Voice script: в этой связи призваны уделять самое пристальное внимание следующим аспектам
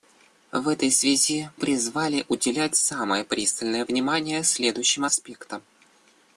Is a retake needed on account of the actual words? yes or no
no